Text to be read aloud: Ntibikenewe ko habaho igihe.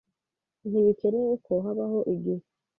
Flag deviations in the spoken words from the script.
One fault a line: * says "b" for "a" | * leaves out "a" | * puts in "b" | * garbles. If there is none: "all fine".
all fine